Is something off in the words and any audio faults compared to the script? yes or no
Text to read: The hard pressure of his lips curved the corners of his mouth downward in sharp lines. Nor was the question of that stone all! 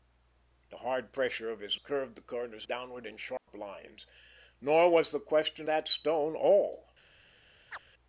yes